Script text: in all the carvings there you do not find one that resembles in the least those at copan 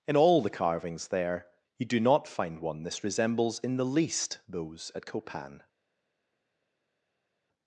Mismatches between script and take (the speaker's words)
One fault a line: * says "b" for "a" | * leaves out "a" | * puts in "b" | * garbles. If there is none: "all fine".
* says "this" for "that"